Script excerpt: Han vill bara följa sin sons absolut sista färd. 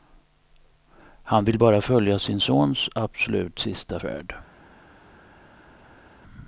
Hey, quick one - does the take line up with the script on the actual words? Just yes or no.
yes